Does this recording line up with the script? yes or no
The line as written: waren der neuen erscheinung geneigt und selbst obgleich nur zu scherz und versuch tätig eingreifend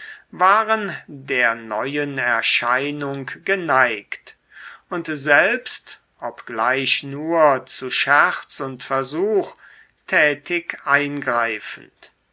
yes